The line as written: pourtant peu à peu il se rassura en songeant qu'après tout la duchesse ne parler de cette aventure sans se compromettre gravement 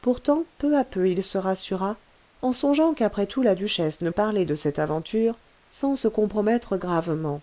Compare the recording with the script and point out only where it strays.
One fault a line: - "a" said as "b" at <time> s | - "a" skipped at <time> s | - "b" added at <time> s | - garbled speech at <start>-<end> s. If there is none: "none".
none